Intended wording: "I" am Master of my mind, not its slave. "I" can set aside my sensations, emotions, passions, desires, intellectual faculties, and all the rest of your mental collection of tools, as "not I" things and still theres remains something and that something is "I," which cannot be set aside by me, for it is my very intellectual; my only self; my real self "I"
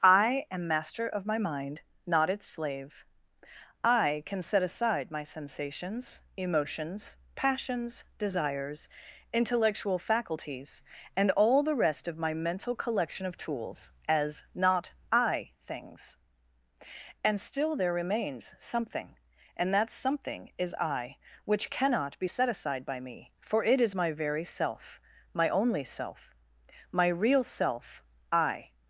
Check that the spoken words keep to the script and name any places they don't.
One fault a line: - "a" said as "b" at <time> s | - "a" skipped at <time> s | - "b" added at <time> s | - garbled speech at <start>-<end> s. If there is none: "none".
- "your" said as "my" at 12.2 s
- "theres" said as "there" at 17.7 s
- "intellectual" said as "self" at 24.4 s